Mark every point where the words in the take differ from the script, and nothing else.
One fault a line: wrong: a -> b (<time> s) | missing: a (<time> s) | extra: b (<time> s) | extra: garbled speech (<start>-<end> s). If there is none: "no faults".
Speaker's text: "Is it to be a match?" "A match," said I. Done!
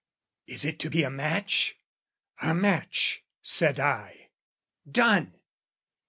no faults